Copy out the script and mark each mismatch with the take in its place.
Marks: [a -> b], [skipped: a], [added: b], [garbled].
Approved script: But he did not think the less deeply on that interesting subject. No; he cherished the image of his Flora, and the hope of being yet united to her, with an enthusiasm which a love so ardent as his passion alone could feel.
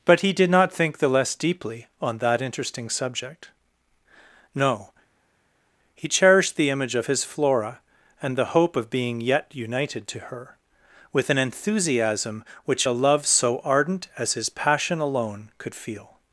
But he did not think the less deeply on that interesting subject. No; he cherished the image of his Flora, and the hope of being yet united to her, with an enthusiasm which a love so ardent as his passion alone could feel.